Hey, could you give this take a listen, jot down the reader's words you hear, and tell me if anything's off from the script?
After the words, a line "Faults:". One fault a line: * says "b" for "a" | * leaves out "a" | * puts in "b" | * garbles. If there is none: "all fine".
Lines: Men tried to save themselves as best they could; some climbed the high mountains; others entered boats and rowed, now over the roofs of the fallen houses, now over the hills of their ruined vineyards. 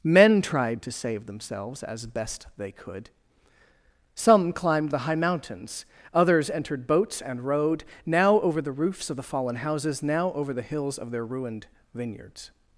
Men tried to save themselves as best they could; some climbed the high mountains; others entered boats and rowed, now over the roofs of the fallen houses, now over the hills of their ruined vineyards.
Faults:
all fine